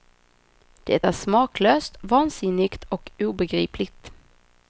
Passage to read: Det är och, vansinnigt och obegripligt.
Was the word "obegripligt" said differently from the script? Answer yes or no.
no